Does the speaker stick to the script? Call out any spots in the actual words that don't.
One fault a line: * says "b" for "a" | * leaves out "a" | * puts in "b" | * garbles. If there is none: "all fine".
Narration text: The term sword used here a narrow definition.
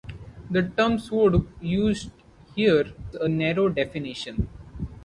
all fine